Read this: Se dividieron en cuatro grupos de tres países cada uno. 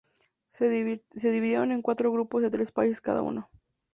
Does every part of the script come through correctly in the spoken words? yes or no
yes